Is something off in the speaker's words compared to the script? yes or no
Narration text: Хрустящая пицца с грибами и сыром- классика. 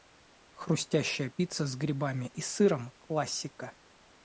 no